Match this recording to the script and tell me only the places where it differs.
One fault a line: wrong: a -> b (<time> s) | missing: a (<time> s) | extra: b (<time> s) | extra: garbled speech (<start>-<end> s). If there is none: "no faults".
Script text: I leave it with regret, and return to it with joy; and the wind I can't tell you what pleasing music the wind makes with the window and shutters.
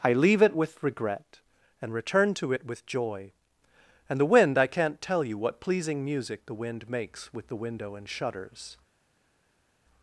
no faults